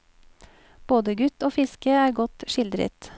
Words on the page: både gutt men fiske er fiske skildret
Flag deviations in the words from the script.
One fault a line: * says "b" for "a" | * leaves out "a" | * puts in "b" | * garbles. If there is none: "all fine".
* says "og" for "men"
* says "godt" for "fiske"